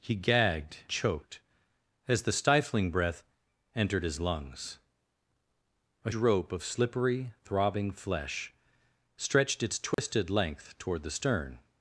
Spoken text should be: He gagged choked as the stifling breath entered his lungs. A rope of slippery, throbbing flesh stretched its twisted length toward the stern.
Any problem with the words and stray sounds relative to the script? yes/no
yes